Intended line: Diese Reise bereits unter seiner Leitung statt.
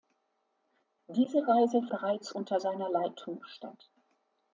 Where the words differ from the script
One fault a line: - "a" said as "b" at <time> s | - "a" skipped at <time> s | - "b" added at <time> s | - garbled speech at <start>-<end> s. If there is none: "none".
none